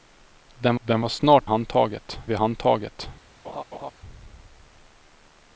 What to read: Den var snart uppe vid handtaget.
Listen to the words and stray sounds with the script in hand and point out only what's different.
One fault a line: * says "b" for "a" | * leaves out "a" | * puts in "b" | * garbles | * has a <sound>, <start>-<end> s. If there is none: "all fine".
* puts in "den"
* says "handtaget" for "uppe"
* has a laugh, 3.4-3.9 s